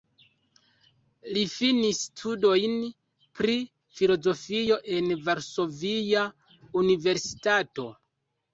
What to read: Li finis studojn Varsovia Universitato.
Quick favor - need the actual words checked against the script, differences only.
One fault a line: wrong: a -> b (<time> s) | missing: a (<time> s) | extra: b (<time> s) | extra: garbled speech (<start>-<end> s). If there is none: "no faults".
extra: pri filozofio en (3.4 s)